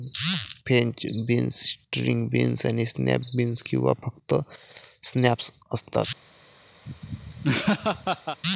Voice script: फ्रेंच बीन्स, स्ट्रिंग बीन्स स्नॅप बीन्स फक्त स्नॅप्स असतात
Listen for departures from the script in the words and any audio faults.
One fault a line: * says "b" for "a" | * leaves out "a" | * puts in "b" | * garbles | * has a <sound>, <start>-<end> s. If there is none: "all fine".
* puts in "आणि"
* puts in "किंवा"
* has a laugh, 6.9-8.4 s